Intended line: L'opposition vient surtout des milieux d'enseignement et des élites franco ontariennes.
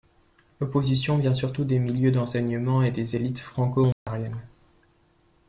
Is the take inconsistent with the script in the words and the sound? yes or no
yes